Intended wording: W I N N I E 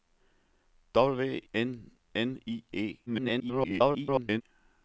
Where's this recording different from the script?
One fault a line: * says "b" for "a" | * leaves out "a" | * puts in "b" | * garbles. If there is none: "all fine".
* leaves out "I"
* garbles